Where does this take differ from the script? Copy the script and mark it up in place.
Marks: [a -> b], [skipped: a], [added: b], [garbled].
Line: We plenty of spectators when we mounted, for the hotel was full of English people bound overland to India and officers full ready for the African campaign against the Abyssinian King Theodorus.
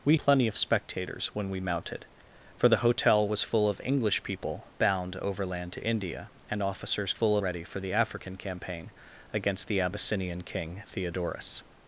We plenty of spectators when we mounted, for the hotel was full of English people bound overland to India and officers full ready for the African campaign against the Abyssinian King Theodorus.